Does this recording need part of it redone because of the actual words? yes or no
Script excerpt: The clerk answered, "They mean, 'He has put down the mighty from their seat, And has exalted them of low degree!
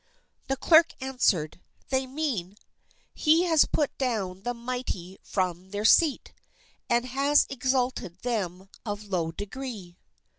no